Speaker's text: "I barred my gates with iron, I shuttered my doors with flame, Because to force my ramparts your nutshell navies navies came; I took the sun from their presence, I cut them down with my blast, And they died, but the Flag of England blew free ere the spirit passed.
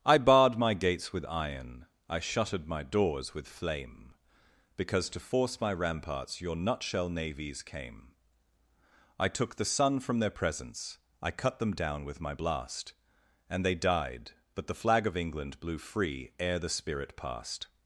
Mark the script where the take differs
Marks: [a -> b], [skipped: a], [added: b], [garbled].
"I barred my gates with iron, I shuttered my doors with flame, Because to force my ramparts your nutshell navies [skipped: navies] came; I took the sun from their presence, I cut them down with my blast, And they died, but the Flag of England blew free ere the spirit passed.